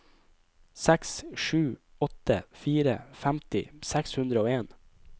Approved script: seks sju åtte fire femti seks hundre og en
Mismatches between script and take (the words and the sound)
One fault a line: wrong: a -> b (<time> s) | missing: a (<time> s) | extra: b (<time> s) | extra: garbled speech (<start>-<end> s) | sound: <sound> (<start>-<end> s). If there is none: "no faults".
no faults